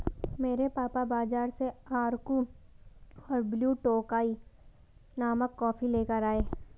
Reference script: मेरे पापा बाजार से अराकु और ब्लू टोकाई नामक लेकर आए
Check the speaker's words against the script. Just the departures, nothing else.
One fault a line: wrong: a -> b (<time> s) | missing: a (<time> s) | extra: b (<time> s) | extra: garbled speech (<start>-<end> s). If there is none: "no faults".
extra: कॉफी (5.6 s)